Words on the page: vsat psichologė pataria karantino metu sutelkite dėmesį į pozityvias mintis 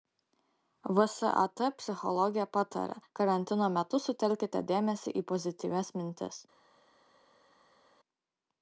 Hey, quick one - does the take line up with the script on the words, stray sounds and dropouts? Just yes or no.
yes